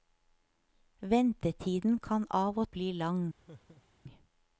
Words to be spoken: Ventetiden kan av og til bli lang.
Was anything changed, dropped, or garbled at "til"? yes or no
yes